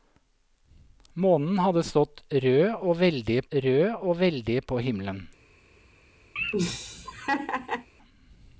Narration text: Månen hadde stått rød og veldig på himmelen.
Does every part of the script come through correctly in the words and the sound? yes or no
no